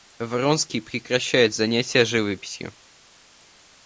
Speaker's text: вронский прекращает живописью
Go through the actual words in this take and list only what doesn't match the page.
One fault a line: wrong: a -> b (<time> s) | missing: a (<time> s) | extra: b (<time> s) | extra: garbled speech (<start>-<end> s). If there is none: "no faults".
extra: занятия (1.5 s)